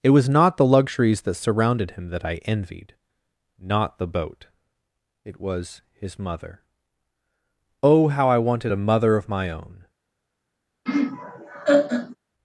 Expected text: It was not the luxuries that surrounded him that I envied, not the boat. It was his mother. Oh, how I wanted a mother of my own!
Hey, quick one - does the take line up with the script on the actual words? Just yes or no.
yes